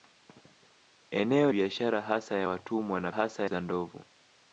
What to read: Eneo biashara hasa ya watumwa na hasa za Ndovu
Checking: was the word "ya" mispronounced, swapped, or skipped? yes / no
no